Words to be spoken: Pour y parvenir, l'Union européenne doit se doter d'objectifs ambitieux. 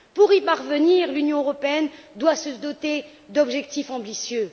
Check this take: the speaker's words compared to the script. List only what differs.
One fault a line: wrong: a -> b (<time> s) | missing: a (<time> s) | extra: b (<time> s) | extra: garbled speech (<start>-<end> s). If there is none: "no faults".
no faults